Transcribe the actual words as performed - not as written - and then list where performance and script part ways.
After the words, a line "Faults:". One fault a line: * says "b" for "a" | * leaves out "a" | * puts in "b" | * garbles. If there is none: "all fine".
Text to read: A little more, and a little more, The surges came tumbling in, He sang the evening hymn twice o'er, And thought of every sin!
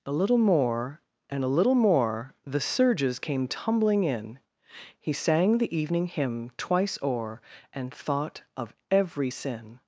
A little more, and a little more, The surges came tumbling in, He sang the evening hymn twice o'er, And thought of every sin!
Faults:
all fine